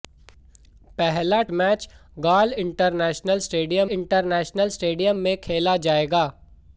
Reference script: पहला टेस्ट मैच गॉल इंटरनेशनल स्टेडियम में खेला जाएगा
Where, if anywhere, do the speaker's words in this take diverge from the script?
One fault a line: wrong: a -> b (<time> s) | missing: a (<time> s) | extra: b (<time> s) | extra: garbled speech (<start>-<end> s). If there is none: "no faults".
missing: टेस्ट (1.4 s)
extra: इंटरनेशनल स्टेडियम (3.9 s)